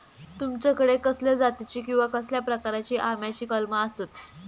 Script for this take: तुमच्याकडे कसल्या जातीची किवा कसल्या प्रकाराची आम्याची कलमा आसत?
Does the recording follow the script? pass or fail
pass